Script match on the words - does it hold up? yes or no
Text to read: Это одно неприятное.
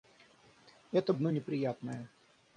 yes